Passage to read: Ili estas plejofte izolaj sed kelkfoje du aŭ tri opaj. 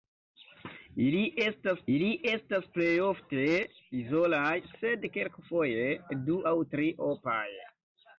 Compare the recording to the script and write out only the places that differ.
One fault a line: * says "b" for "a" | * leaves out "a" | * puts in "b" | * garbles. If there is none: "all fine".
* puts in "ili estas"